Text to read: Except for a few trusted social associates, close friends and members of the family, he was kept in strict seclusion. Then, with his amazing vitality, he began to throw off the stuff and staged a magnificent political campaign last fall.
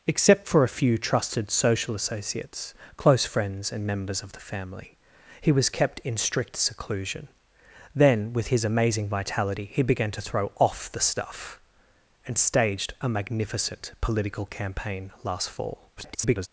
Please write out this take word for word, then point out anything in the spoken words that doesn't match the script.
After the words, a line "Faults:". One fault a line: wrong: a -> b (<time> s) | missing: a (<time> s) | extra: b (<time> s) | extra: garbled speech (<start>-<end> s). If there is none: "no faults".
Except for a few trusted social associates, close friends and members of the family, he was kept in strict seclusion. Then, with his amazing vitality, he began to throw off the stuff and staged a magnificent political campaign last fall. [garbled]
Faults:
extra: garbled speech (16.0-16.5 s)